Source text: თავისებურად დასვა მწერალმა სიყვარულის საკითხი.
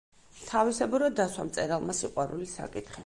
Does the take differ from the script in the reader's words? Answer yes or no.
no